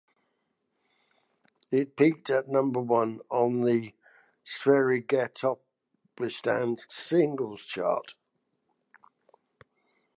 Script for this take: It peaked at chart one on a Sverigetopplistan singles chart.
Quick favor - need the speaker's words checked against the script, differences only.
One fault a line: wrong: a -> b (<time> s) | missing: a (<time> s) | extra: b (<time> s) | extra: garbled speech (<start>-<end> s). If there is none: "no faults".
wrong: chart -> number (2.5 s)
wrong: a -> the (3.6 s)